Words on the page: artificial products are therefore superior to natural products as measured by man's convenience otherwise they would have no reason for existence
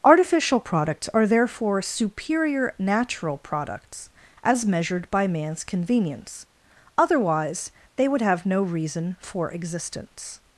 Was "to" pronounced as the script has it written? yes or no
no